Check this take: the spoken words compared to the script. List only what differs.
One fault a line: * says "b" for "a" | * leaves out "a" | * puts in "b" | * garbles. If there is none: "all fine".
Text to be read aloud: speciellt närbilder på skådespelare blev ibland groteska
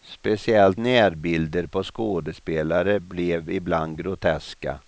all fine